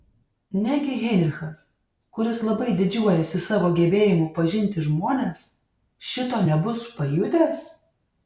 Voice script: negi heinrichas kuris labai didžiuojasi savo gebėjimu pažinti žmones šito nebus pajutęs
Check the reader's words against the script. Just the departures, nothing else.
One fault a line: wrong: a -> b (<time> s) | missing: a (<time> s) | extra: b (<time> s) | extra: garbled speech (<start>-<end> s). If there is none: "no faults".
no faults